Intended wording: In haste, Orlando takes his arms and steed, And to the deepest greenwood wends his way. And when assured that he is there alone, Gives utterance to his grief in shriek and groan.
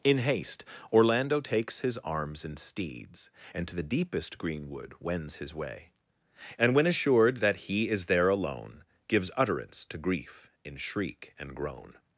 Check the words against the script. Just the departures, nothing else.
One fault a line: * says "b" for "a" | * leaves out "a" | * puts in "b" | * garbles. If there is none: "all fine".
* says "steeds" for "steed"
* leaves out "his"